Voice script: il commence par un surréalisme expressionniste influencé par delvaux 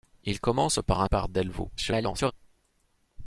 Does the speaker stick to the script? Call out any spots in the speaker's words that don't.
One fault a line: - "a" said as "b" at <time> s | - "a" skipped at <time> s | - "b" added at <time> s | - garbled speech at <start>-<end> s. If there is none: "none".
- "surréalisme expressionniste influencé" skipped at 1.1 s
- garbled speech at 1.8-2.3 s